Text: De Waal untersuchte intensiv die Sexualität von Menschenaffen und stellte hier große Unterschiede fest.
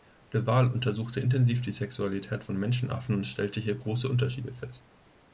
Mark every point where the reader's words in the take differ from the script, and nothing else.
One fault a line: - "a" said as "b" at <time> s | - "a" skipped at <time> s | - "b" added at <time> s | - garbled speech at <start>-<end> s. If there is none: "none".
none